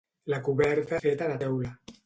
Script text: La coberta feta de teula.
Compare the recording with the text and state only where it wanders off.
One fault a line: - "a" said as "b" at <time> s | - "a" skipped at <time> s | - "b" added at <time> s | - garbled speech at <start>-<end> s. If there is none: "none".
none